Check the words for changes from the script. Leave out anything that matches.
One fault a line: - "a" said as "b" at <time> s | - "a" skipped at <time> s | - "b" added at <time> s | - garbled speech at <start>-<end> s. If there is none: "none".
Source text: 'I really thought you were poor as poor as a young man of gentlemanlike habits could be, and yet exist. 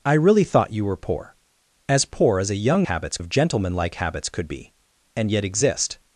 - "man" said as "habits" at 2.8 s